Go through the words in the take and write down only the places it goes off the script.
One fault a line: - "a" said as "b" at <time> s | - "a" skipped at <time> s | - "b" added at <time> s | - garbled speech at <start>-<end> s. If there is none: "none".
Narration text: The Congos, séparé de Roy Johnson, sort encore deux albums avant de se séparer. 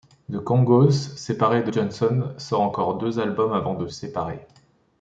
- "Roy" skipped at 1.7 s
- "se" skipped at 3.9 s